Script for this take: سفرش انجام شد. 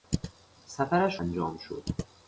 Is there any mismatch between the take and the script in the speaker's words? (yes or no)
no